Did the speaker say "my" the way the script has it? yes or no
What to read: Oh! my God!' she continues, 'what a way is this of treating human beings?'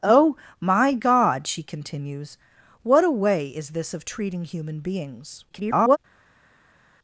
yes